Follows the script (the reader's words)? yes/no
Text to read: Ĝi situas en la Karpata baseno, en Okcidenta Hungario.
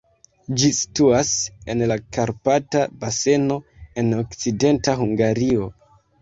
yes